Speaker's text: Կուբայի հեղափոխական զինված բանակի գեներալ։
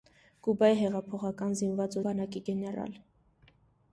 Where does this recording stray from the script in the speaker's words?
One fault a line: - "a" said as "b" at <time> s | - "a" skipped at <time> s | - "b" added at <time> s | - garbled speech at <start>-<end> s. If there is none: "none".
none